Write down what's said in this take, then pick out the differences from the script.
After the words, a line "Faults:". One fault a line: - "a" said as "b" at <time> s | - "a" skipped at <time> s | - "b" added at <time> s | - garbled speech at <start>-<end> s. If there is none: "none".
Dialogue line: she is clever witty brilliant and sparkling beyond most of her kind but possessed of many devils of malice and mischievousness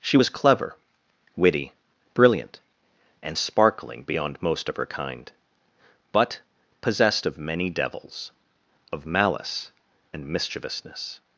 she was clever witty brilliant and sparkling beyond most of her kind but possessed of many devils of malice and mischievousness
Faults:
- "is" said as "was" at 0.1 s